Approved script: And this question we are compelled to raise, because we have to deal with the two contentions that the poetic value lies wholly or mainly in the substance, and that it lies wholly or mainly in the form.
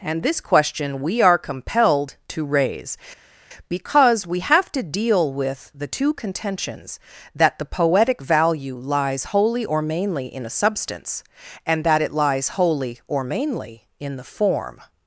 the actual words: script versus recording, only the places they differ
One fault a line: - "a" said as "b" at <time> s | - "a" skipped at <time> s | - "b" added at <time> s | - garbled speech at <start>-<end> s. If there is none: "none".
- "the" said as "a" at 10.5 s